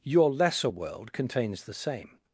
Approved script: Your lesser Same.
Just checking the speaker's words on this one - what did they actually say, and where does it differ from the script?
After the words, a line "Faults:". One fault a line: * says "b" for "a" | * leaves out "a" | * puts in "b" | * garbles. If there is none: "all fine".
Your lesser World contains the same.
Faults:
* puts in "World contains the"